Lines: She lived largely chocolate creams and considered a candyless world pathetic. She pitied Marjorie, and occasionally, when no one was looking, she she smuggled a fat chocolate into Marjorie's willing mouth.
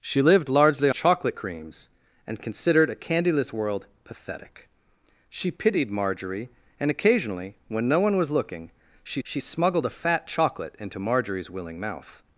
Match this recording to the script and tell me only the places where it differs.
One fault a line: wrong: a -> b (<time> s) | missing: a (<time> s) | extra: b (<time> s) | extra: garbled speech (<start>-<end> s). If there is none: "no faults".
no faults